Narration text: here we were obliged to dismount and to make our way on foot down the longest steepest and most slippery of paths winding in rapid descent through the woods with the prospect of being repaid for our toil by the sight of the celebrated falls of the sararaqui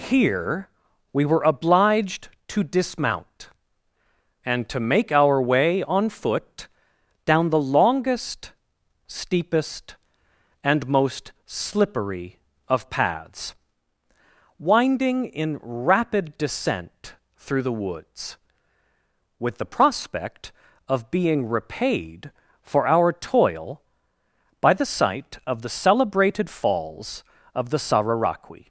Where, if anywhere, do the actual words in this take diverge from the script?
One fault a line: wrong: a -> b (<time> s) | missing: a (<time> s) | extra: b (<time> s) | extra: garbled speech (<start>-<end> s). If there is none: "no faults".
no faults